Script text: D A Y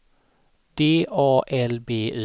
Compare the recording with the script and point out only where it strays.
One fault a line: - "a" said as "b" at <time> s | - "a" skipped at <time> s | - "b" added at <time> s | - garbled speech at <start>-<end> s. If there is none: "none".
- "L B" added at 1.5 s